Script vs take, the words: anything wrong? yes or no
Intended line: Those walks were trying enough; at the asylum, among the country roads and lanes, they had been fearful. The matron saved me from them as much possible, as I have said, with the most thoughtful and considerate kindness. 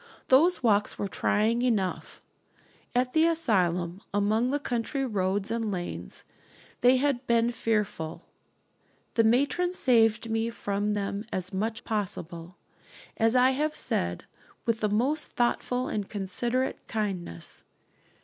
no